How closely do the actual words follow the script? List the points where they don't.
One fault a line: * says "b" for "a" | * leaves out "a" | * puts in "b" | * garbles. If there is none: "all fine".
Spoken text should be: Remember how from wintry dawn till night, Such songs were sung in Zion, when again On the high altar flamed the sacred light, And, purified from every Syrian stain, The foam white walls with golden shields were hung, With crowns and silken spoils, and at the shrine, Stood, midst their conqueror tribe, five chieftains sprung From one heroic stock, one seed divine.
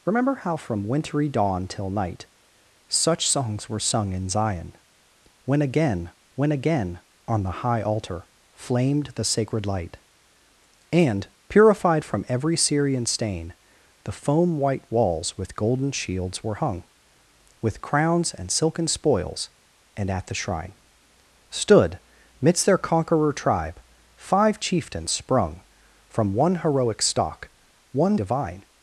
* puts in "when again"
* leaves out "seed"